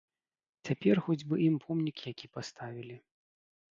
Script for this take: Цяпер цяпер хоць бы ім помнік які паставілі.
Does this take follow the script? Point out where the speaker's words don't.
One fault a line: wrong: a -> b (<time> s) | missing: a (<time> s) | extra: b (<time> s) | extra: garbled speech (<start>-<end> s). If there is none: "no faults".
missing: цяпер (1.0 s)